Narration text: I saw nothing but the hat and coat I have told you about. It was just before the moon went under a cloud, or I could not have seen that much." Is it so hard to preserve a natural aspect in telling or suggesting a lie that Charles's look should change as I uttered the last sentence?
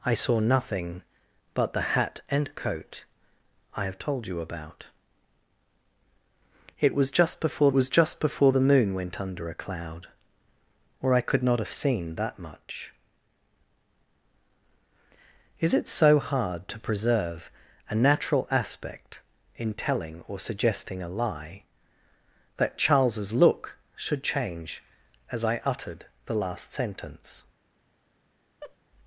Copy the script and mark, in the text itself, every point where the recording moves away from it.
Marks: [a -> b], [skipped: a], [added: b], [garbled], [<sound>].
I saw nothing but the hat and coat I have told you about. It was just before [added: was just before] the moon went under a cloud, or I could not have seen that much." Is it so hard to preserve a natural aspect in telling or suggesting a lie that Charles's look should change as I uttered the last sentence? [laugh]